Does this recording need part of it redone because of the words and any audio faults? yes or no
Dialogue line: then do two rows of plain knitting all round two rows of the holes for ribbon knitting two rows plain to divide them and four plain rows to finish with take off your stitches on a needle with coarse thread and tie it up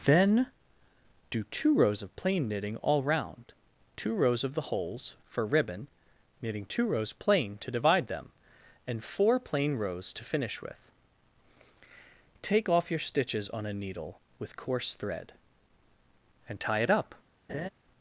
yes